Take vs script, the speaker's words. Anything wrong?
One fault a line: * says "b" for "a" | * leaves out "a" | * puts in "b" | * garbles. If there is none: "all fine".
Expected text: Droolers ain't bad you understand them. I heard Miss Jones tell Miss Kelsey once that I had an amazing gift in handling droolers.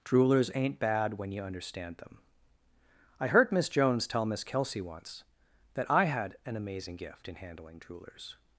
* puts in "when"